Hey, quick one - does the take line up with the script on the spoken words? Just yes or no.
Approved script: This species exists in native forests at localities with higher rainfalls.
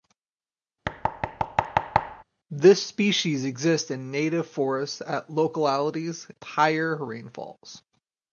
no